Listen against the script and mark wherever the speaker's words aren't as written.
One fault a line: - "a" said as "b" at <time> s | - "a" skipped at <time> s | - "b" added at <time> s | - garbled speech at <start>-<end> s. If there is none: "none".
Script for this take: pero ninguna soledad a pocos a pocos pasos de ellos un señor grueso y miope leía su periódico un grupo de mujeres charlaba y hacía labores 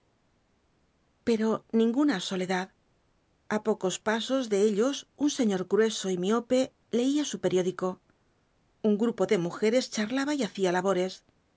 - "a pocos" skipped at 4.0 s